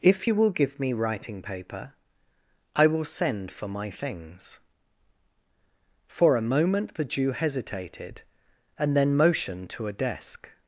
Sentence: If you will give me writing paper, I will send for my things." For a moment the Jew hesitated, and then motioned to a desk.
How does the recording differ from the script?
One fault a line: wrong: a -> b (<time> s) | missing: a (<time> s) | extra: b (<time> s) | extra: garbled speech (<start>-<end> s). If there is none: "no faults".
no faults